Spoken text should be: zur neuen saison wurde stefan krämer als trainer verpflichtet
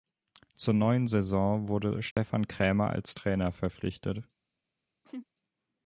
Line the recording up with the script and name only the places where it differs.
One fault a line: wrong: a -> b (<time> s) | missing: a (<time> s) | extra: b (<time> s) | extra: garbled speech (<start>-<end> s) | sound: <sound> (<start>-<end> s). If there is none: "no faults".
sound: dropout (2.1-2.2 s)
sound: laugh (5.0-5.3 s)